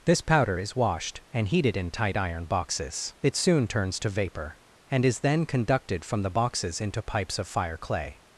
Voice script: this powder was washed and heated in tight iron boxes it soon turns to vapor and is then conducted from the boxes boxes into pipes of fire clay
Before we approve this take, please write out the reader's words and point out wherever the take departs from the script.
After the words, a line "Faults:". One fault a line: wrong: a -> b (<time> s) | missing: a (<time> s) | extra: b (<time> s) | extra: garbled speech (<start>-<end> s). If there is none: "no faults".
this powder is washed and heated in tight iron boxes it soon turns to vapor and is then conducted from the boxes into pipes of fire clay
Faults:
wrong: was -> is (0.6 s)
missing: boxes (6.8 s)